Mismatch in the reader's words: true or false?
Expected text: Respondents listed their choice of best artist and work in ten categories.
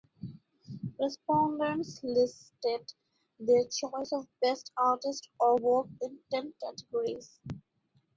true